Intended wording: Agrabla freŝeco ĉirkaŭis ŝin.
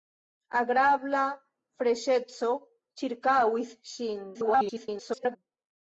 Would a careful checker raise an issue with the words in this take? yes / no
yes